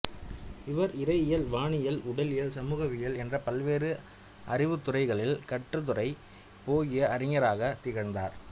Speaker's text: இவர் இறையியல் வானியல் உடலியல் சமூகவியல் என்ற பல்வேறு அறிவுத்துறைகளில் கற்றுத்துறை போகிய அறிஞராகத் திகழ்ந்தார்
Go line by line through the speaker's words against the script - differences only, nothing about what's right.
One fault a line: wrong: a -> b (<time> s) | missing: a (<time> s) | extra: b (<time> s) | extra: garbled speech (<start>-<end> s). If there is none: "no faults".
no faults